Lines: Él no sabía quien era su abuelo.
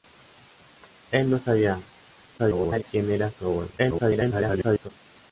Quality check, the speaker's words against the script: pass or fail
fail